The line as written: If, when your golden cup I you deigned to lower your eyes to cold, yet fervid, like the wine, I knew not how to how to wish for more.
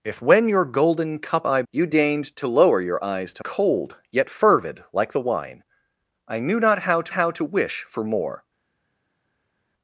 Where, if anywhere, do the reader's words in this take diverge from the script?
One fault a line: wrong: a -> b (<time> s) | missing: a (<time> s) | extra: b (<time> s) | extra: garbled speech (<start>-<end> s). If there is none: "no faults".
no faults